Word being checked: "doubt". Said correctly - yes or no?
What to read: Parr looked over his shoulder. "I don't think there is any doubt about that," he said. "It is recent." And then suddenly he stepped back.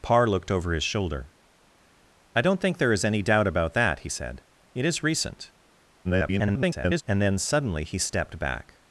yes